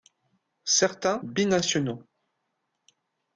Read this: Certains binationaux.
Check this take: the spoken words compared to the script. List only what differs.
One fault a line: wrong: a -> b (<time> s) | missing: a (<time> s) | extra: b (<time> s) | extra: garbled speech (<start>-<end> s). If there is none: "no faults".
no faults